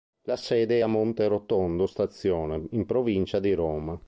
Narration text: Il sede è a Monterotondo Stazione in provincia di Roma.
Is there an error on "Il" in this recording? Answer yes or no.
yes